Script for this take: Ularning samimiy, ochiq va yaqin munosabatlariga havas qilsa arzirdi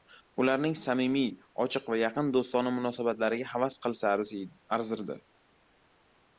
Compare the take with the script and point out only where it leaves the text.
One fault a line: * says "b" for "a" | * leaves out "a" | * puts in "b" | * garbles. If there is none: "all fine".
* puts in "do‘stona"